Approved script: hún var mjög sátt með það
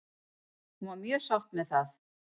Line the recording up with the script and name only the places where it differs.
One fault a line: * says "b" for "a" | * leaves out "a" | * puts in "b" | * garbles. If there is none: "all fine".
all fine